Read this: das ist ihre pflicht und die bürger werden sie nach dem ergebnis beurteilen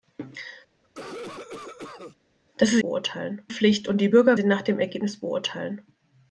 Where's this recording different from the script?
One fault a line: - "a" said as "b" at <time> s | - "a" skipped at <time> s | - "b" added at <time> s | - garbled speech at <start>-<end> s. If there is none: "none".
- "ihre" said as "beurteilen" at 2.8 s
- "werden" skipped at 4.4 s